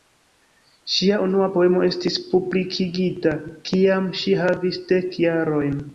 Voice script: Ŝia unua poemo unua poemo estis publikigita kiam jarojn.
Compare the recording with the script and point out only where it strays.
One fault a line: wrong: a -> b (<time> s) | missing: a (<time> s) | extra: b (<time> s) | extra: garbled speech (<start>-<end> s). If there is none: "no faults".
missing: unua poemo (1.8 s)
extra: ŝi havis dek (4.2 s)